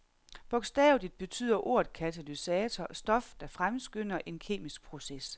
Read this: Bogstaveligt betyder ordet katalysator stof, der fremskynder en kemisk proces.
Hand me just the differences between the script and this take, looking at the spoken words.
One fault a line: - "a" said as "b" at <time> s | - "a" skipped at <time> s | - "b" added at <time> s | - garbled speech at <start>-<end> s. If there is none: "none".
none